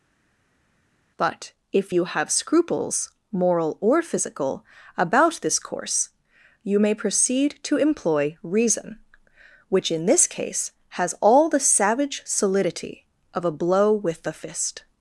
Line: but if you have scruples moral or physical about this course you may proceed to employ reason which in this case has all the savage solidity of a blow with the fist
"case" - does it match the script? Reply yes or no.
yes